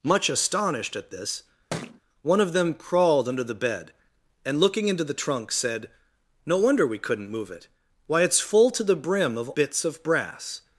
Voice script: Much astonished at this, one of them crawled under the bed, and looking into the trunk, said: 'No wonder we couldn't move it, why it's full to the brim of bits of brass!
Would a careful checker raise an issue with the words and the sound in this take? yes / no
yes